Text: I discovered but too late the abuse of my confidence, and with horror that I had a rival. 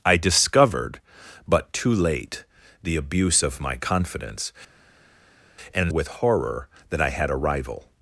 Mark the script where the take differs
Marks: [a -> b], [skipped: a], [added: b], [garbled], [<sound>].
I discovered but too late the abuse of my confidence, and with horror that I had a rival.